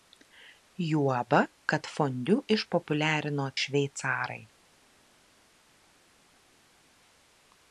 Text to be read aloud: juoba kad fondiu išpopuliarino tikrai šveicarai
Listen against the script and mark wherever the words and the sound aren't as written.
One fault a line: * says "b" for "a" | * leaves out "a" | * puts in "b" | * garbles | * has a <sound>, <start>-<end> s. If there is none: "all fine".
* leaves out "tikrai"